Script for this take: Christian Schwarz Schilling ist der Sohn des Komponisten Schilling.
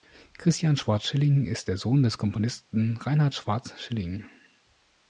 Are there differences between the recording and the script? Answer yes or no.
yes